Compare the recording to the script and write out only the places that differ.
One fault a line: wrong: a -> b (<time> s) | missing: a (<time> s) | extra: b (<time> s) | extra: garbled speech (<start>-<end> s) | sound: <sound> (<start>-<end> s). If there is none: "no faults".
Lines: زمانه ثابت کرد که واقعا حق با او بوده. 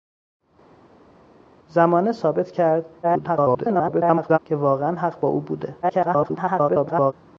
extra: garbled speech (3.0-4.4 s)
extra: garbled speech (5.8-7.1 s)